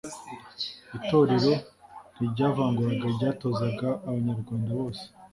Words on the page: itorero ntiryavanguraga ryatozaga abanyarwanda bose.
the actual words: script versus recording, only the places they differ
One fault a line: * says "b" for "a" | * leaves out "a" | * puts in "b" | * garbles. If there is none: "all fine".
all fine